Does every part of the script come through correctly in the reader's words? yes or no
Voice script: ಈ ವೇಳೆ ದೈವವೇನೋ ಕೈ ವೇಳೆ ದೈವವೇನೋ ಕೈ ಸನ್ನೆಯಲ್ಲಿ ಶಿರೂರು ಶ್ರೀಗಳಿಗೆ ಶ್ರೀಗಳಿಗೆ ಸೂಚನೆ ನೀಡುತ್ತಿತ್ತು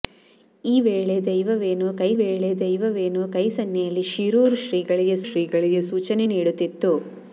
yes